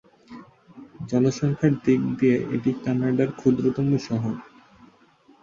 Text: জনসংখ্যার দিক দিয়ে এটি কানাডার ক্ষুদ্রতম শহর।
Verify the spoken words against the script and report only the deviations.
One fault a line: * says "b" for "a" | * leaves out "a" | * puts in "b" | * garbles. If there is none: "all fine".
all fine